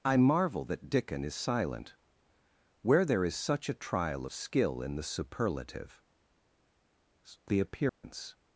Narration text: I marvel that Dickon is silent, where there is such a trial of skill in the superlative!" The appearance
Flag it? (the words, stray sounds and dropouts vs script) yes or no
yes